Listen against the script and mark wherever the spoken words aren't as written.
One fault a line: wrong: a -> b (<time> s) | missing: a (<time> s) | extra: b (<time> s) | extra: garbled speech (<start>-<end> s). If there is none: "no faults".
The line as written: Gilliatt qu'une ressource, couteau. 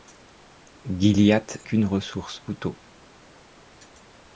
no faults